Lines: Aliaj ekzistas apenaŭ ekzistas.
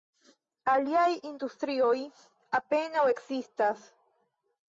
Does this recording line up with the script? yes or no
no